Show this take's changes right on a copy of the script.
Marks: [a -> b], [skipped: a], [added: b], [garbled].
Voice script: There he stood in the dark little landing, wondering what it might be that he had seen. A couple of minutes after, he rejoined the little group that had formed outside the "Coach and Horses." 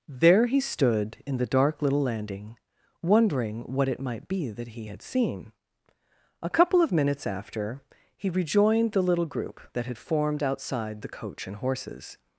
There he stood in the dark little landing, wondering what it might be that he had seen. A couple of minutes after, he rejoined the little group that had formed outside the "Coach and Horses."